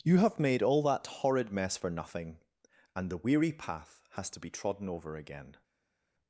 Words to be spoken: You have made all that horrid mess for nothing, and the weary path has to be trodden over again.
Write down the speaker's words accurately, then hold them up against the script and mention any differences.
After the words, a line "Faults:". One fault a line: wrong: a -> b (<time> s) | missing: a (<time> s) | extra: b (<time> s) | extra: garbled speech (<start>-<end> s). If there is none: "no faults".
You have made all that horrid mess for nothing, and the weary path has to be trodden over again.
Faults:
no faults